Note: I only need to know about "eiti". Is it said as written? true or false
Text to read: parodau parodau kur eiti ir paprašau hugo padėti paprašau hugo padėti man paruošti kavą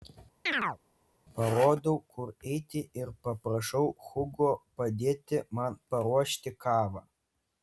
true